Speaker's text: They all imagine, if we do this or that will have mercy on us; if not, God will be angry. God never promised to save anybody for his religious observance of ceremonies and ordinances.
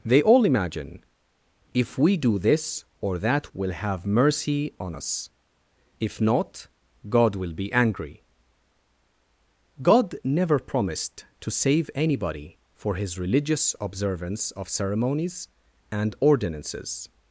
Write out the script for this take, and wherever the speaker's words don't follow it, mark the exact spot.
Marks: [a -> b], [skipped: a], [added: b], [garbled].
They all imagine, if we do this or that will have mercy on us; if not, God will be angry. God never promised to save anybody for his religious observance of ceremonies and ordinances.